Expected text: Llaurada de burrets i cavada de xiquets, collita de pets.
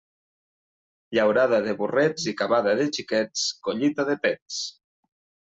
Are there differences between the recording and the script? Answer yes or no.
no